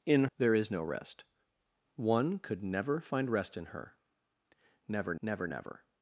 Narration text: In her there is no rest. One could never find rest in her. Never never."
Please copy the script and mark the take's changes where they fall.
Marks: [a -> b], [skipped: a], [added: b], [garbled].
In [skipped: her] there is no rest. One could never find rest in her. Never never." [added: never]